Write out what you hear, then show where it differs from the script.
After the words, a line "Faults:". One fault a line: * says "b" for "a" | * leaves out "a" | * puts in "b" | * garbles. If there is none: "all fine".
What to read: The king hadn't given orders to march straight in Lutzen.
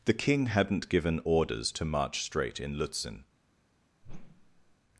The king hadn't given orders to march straight in Lutzen.
Faults:
all fine